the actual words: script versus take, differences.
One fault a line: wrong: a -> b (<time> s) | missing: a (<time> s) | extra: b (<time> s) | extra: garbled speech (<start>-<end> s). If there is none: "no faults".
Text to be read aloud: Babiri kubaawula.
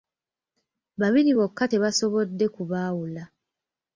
extra: bokka tebasobodde (1.4 s)